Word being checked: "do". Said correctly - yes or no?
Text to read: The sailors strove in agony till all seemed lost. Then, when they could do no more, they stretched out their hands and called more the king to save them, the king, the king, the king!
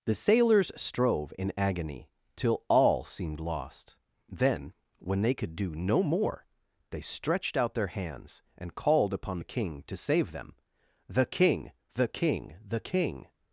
yes